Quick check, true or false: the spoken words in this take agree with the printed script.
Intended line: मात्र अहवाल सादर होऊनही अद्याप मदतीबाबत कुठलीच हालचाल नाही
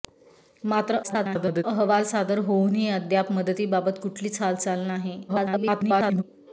false